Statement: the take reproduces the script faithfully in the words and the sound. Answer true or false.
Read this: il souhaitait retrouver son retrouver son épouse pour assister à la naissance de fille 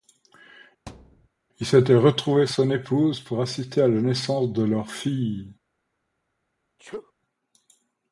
false